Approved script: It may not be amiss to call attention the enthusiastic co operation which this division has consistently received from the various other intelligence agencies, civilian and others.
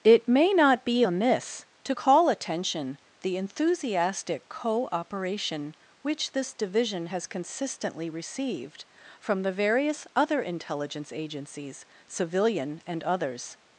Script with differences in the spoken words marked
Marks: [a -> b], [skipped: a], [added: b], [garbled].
It may not be amiss to call attention the enthusiastic co operation which this division has consistently received from the various other intelligence agencies, civilian and others.